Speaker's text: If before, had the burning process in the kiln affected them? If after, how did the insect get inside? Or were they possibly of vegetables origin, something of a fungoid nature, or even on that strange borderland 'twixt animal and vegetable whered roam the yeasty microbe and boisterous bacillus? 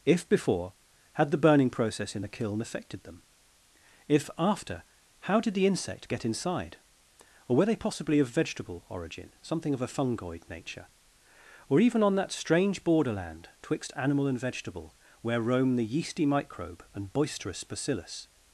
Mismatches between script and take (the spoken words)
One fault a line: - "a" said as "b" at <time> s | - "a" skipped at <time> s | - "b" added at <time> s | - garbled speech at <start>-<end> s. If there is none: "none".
- "vegetables" said as "vegetable" at 8.3 s
- "whered" said as "where" at 15.2 s